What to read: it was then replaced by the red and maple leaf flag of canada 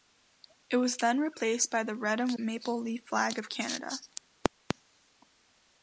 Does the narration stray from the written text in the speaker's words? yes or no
no